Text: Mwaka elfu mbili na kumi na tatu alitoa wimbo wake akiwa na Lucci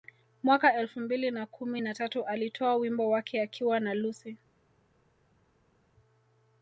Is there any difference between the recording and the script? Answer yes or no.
no